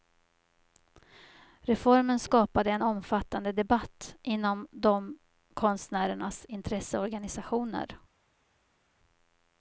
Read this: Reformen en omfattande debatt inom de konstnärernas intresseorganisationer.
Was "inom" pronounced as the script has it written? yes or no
yes